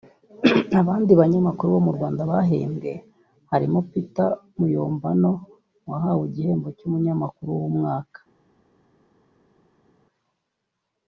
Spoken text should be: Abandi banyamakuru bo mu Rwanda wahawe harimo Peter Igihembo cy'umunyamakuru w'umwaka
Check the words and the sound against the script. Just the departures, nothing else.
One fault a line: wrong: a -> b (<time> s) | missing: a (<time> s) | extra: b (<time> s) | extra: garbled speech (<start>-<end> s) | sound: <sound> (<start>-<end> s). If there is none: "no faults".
wrong: wahawe -> bahembwe (2.3 s)
extra: Muyombano wahawe (4.6 s)